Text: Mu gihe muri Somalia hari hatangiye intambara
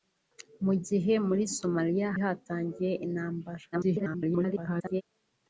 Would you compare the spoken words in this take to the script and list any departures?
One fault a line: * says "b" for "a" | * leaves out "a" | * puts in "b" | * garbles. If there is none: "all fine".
* leaves out "hari"
* garbles